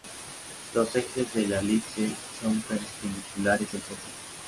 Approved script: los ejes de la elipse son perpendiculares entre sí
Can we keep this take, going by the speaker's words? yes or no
yes